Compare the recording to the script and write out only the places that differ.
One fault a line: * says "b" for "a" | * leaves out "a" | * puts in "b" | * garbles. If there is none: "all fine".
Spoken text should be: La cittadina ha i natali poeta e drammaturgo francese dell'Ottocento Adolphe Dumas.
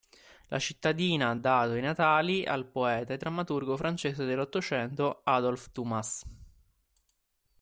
* puts in "dato"
* puts in "al"